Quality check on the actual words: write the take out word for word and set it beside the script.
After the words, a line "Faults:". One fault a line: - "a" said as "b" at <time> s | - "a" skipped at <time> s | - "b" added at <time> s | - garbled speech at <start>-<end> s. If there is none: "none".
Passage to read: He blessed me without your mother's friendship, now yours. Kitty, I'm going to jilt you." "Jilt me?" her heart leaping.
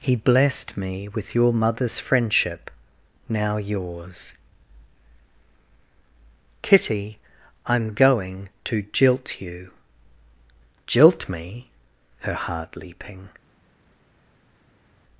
He blessed me with your mother's friendship, now yours. Kitty, I'm going to jilt you." "Jilt me?" her heart leaping.
Faults:
- "without" said as "with" at 1.1 s